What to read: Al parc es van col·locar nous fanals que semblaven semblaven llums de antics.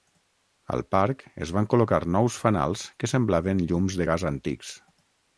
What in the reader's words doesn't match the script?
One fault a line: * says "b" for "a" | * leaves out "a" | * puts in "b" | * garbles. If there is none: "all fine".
* leaves out "semblaven"
* puts in "gas"